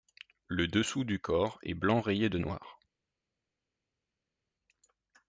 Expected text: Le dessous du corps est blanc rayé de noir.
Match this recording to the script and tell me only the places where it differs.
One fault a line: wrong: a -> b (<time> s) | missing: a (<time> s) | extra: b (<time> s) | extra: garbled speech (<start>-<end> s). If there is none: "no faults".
no faults